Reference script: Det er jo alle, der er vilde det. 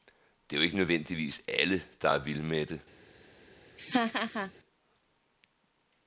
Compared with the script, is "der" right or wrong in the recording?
right